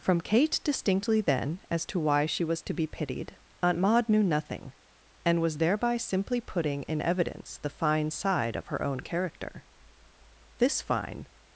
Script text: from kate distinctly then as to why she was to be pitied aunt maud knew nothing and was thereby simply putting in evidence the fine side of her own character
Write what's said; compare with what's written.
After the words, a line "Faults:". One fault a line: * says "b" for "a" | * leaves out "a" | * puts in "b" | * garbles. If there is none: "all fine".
from kate distinctly then as to why she was to be pitied aunt maud knew nothing and was thereby simply putting in evidence the fine side of her own character this fine
Faults:
* puts in "this fine"